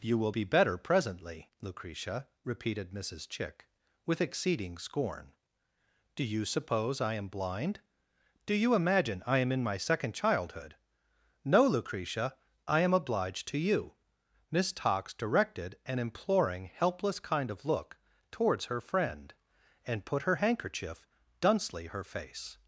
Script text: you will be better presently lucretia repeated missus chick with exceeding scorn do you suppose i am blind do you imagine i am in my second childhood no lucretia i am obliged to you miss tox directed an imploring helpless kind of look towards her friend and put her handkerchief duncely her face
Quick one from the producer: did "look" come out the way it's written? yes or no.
yes